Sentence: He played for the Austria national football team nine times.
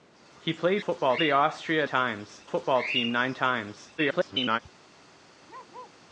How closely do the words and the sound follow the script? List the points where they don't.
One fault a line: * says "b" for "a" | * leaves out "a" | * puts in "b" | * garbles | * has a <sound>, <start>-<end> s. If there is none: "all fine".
* says "football" for "for"
* says "times" for "national"
* garbles
* has a bark, 5.5-6.0 s